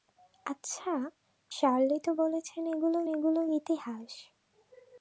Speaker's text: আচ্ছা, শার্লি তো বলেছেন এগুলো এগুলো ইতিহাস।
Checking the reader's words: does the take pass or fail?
pass